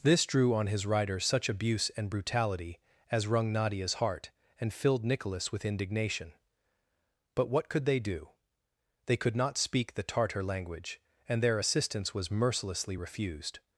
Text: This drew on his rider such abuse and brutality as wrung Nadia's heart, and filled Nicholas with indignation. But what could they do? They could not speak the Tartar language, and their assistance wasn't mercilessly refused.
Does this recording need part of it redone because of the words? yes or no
yes